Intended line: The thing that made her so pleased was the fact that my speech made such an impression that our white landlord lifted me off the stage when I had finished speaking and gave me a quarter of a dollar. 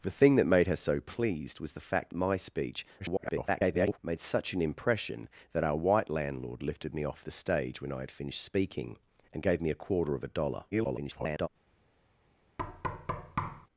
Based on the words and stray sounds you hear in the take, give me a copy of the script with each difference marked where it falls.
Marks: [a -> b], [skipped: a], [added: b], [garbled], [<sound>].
The thing that made her so pleased was the fact [skipped: that] my speech [garbled] made such an impression that our white landlord lifted me off the stage when I had finished speaking and gave me a quarter of a dollar. [garbled] [thud]